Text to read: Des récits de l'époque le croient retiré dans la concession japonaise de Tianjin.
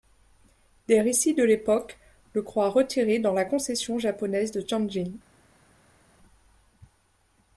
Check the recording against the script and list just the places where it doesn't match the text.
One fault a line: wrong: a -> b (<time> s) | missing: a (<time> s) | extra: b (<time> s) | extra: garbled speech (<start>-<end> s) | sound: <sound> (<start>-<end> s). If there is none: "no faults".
no faults